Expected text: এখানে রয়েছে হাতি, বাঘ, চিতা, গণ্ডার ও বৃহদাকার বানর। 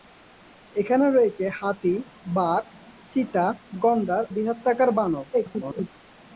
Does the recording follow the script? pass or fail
fail